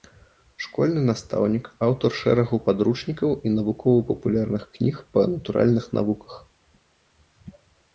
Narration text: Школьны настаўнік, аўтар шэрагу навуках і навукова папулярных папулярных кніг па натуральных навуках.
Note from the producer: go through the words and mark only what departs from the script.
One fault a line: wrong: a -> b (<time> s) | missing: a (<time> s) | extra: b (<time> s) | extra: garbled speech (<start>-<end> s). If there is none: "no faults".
wrong: навуках -> падручнікаў (2.7 s)
missing: папулярных (4.6 s)